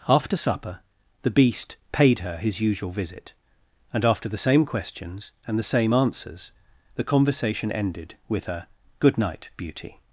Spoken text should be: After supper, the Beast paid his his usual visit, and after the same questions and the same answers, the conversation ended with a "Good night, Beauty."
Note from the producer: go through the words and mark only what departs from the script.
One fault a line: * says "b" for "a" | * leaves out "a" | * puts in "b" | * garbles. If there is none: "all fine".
* says "her" for "his"